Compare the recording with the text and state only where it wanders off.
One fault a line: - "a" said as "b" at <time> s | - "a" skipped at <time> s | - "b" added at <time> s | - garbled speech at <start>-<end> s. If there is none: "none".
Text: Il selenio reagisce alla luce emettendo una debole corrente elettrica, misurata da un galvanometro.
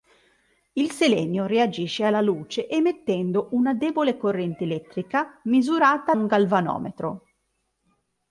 - "da" skipped at 6.2 s